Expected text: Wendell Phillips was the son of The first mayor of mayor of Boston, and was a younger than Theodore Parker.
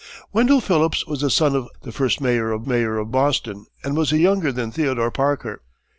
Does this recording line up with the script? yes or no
yes